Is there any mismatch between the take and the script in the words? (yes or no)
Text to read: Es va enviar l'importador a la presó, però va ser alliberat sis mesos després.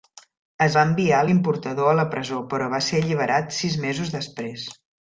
no